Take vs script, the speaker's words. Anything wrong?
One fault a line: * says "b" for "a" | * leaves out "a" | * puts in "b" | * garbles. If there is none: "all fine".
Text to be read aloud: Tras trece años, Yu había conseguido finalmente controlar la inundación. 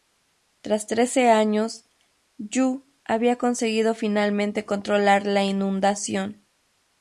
all fine